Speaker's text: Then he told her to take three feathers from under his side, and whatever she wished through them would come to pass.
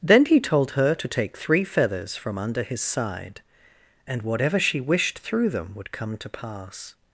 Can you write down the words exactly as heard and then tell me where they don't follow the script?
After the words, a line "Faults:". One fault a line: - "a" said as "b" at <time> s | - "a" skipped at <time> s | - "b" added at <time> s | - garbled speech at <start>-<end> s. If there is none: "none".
Then he told her to take three feathers from under his side, and whatever she wished through them would come to pass.
Faults:
none